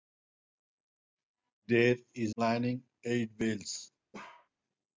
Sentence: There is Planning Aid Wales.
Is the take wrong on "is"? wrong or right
right